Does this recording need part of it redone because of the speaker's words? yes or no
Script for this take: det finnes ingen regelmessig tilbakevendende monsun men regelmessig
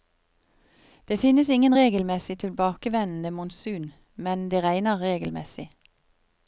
yes